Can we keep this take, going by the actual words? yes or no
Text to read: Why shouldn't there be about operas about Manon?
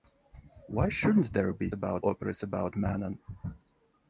yes